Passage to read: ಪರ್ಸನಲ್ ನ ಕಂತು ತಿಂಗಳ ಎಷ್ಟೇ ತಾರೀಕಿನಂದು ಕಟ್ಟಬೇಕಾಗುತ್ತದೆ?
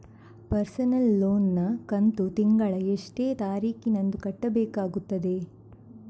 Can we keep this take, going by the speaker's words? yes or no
no